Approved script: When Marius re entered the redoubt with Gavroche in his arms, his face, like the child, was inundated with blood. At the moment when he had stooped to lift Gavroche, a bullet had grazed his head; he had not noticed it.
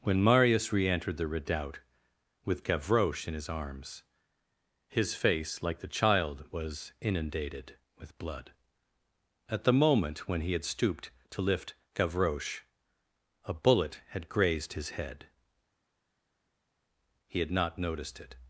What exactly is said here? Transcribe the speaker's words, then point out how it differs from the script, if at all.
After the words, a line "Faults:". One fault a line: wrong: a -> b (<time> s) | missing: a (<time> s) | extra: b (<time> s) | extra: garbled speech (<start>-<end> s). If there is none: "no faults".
When Marius re entered the redoubt with Gavroche in his arms, his face, like the child, was inundated with blood. At the moment when he had stooped to lift Gavroche, a bullet had grazed his head; he had not noticed it.
Faults:
no faults